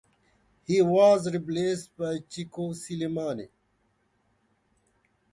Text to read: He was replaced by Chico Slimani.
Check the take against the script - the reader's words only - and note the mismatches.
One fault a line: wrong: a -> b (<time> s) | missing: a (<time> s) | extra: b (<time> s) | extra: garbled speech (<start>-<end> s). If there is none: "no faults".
no faults